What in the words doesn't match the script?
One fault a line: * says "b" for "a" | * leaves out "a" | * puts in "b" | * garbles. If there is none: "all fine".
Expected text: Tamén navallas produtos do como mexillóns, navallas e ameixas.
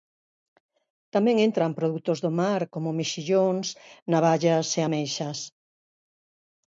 * says "entran" for "navallas"
* puts in "mar"